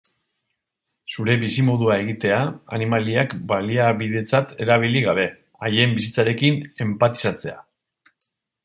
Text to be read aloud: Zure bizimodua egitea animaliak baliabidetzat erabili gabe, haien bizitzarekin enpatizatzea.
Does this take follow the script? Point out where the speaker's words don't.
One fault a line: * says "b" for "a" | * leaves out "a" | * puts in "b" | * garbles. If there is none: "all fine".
all fine